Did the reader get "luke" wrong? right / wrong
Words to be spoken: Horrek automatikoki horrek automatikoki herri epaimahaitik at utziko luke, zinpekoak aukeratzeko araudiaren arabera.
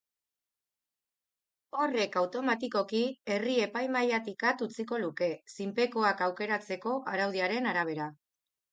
right